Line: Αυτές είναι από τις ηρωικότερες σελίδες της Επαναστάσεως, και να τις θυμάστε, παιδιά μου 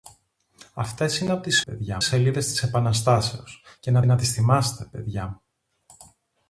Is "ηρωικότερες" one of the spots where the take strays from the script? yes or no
yes